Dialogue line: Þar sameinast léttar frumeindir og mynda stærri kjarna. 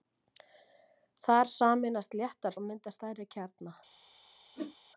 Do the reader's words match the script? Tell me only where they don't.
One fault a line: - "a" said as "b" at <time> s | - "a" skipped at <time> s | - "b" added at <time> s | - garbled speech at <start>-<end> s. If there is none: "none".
- "frumeindir" skipped at 2.6 s